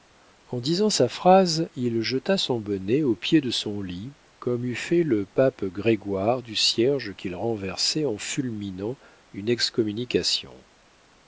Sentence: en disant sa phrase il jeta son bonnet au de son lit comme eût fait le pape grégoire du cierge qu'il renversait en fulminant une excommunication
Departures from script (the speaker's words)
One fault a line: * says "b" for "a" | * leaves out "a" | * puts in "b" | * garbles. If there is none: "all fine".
* puts in "pied"